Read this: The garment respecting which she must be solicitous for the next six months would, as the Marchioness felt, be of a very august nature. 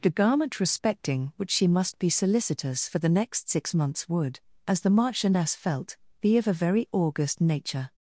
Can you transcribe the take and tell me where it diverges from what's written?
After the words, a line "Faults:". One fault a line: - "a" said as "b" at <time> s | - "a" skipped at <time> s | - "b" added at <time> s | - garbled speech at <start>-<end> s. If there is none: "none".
The garment respecting which she must be solicitous for the next six months would, as the Marchioness felt, be of a very august nature.
Faults:
none